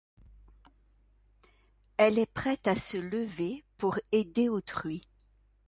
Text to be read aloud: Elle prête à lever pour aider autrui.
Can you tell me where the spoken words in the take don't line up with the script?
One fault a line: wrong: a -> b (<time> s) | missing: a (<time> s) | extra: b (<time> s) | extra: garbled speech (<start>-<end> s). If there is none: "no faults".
extra: est (2.2 s)
extra: se (2.7 s)